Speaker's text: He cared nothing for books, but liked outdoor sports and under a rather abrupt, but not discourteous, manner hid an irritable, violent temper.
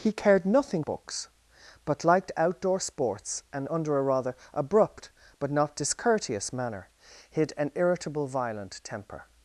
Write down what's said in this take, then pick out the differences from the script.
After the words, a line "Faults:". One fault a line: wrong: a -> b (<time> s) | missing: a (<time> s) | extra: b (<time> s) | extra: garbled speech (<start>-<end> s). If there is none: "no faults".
He cared nothing books, but liked outdoor sports and under a rather abrupt, but not discourteous, manner hid an irritable, violent temper.
Faults:
missing: for (0.8 s)